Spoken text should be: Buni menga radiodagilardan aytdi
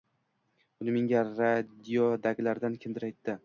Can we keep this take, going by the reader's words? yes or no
no